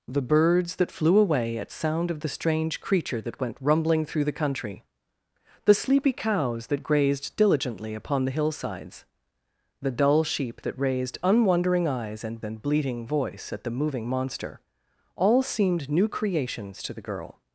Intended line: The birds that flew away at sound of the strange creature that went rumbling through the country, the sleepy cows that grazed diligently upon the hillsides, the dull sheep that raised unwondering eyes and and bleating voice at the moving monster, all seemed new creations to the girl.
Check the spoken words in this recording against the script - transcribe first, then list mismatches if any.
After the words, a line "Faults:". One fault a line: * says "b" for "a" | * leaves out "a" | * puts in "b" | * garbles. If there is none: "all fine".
The birds that flew away at sound of the strange creature that went rumbling through the country, the sleepy cows that grazed diligently upon the hillsides, the dull sheep that raised unwondering eyes and and bleating voice at the moving monster, all seemed new creations to the girl.
Faults:
all fine